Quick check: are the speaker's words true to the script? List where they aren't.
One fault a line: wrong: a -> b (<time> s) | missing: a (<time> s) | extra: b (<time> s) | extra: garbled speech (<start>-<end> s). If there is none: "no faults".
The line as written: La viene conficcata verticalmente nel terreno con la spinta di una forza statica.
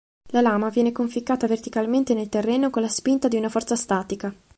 extra: lama (0.4 s)